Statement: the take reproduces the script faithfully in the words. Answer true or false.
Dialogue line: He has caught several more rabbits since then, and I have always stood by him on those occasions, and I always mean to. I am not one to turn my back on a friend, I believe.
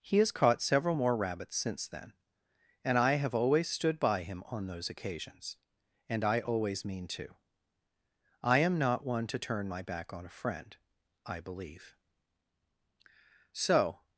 false